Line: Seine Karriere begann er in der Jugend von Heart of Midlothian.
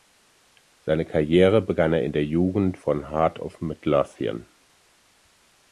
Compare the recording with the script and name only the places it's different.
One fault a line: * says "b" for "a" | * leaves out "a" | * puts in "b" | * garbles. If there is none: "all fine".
all fine